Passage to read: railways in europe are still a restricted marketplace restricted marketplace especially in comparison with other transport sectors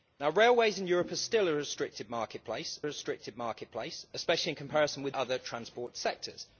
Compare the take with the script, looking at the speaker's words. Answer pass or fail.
pass